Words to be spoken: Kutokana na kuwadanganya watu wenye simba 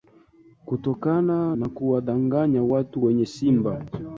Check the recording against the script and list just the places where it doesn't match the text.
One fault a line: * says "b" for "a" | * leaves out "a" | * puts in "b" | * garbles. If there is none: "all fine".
all fine